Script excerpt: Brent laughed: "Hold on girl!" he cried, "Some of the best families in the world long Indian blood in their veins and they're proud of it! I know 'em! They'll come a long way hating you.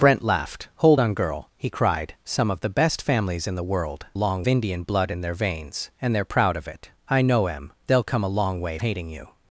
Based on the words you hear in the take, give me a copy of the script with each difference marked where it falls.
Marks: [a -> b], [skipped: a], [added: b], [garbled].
Brent laughed: "Hold on girl!" he cried, "Some of the best families in the world long Indian blood in their veins and they're proud of it! I know 'em! They'll come a long way hating you.